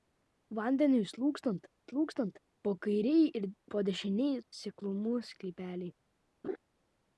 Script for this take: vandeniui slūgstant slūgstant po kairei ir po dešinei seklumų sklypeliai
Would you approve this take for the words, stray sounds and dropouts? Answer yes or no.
no